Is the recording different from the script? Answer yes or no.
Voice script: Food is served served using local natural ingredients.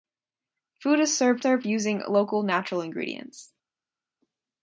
no